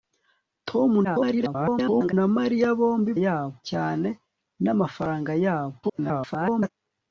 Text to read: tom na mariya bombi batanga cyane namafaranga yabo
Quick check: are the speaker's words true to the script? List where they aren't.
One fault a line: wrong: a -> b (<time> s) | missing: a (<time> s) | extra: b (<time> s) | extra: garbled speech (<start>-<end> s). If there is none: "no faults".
extra: garbled speech (1.0-2.1 s)
wrong: batanga -> yabo (3.2 s)
extra: garbled speech (5.8-6.7 s)